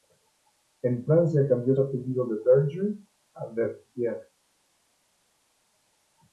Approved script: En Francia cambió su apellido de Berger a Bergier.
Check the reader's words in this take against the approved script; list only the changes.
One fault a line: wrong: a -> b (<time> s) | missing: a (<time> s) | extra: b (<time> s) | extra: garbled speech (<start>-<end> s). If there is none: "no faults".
missing: su (1.8 s)